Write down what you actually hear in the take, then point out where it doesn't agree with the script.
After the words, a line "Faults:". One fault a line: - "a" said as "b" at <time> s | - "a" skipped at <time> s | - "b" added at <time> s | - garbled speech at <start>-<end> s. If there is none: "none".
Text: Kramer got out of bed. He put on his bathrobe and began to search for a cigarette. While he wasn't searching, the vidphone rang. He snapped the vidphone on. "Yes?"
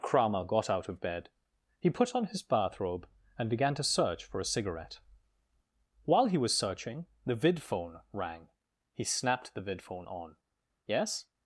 Kramer got out of bed. He put on his bathrobe and began to search for a cigarette. While he was searching, the vidphone rang. He snapped the vidphone on. "Yes?"
Faults:
- "wasn't" said as "was" at 6.4 s